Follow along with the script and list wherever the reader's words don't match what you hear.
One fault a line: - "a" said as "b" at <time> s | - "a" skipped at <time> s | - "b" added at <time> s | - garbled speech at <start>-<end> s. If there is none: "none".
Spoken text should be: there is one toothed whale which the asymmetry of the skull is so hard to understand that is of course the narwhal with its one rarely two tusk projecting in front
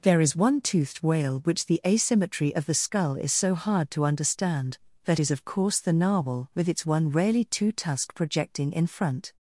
none